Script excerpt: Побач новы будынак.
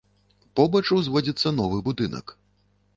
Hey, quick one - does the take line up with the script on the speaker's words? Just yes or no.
no